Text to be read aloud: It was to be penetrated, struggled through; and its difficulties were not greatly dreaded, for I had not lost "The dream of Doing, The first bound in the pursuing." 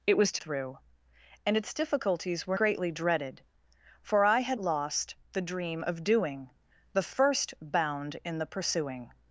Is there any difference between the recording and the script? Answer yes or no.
yes